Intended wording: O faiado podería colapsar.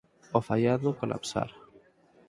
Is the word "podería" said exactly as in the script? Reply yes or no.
no